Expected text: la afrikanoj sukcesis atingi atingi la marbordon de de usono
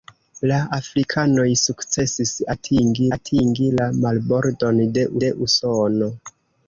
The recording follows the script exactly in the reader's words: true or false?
true